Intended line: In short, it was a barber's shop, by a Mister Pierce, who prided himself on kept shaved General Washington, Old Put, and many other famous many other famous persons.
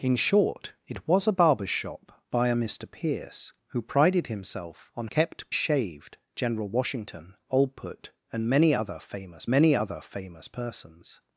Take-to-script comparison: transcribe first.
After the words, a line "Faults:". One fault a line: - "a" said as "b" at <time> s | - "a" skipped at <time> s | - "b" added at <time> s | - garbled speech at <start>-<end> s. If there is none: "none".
In short, it was a barber's shop, by a Mister Pierce, who prided himself on kept shaved General Washington, Old Put, and many other famous many other famous persons.
Faults:
none